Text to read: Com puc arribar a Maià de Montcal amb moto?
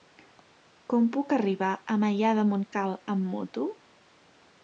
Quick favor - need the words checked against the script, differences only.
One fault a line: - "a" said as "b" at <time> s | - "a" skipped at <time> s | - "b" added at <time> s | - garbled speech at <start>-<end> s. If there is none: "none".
none